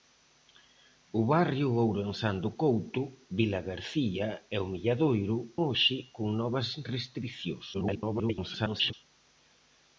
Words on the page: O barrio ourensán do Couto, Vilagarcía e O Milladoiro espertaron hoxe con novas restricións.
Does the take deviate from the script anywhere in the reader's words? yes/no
yes